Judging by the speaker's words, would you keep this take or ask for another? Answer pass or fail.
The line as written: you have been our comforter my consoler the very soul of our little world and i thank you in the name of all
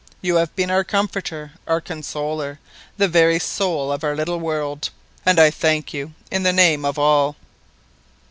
fail